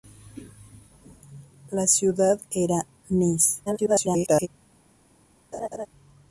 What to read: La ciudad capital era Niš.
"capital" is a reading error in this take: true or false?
true